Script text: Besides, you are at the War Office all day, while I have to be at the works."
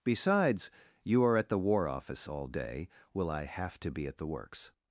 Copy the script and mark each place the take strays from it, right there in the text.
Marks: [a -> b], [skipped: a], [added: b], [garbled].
Besides, you are at the War Office all day, [while -> will] I have to be at the works."